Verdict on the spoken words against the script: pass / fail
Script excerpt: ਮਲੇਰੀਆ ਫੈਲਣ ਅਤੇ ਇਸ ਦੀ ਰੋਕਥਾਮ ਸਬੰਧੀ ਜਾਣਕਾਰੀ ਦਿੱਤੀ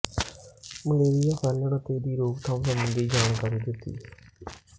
fail